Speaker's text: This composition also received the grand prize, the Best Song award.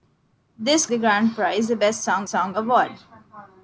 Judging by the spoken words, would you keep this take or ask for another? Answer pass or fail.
fail